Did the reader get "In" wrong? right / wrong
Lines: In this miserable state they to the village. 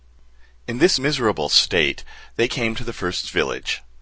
right